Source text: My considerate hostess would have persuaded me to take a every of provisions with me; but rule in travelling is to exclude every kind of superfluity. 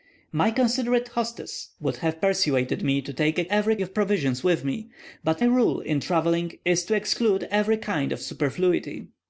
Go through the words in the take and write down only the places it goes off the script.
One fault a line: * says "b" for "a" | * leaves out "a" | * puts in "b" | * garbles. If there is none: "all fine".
all fine